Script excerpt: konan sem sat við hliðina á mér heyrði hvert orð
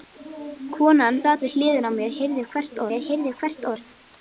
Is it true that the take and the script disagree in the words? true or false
true